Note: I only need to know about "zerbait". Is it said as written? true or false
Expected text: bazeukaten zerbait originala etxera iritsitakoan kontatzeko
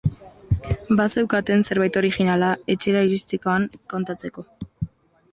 true